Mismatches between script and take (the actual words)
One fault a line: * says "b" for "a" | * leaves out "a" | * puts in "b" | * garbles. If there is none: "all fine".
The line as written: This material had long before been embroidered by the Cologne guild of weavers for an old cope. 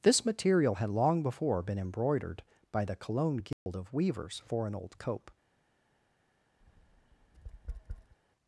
all fine